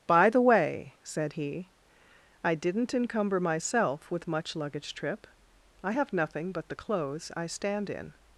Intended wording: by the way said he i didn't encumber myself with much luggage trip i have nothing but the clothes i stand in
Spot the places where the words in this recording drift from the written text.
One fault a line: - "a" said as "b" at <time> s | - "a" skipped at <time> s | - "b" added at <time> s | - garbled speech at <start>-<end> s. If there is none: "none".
none